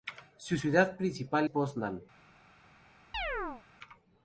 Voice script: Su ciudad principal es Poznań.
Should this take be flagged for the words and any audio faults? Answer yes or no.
yes